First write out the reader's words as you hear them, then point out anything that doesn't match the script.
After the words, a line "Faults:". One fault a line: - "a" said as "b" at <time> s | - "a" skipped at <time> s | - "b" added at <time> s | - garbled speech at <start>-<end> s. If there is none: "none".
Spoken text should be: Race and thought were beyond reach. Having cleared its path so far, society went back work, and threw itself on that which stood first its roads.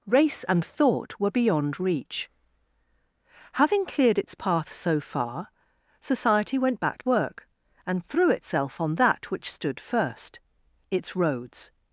Race and thought were beyond reach. Having cleared its path so far, society went back work, and threw itself on that which stood first its roads.
Faults:
none